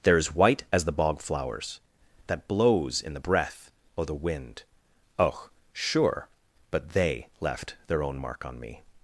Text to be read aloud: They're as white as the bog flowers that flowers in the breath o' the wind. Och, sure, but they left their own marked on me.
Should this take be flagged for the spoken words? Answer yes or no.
yes